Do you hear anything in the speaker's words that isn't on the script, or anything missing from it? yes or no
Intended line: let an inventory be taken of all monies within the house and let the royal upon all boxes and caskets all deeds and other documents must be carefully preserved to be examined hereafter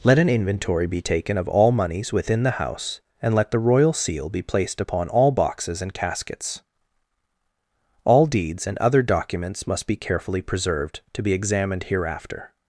yes